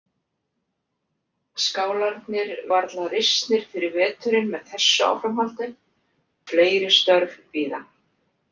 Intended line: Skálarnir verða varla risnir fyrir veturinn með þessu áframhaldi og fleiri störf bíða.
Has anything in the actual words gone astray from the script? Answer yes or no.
yes